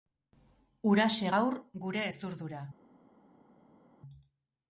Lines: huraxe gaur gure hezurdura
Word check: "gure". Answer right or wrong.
right